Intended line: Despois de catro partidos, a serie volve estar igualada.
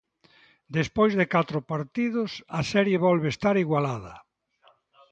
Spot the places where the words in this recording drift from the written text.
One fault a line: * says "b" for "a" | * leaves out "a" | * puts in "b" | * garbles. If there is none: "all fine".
all fine